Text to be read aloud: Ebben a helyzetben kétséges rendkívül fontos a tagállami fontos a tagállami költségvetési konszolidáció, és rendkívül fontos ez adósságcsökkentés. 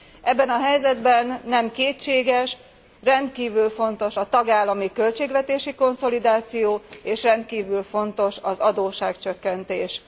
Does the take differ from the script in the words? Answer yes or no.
yes